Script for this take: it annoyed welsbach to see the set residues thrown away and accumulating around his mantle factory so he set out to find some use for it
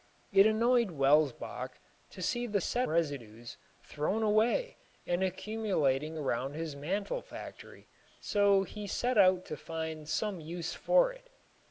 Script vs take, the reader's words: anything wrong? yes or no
no